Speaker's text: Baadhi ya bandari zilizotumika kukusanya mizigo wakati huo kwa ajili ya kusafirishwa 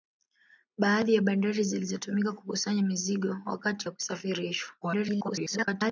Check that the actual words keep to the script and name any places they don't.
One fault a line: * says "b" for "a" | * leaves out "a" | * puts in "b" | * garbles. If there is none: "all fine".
* leaves out "huo kwa ajili"
* garbles